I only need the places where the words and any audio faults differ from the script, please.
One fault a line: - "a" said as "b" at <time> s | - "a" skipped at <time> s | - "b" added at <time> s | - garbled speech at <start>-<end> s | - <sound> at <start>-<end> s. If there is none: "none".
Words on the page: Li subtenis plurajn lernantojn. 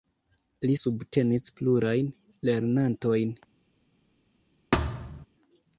- thud at 4.7-5.3 s